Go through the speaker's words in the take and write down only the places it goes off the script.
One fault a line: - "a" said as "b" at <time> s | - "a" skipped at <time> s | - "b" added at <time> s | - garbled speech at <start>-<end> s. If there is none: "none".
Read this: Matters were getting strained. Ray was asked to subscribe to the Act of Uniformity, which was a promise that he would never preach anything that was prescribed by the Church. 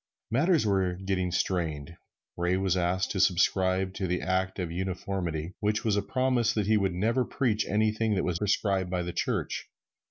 none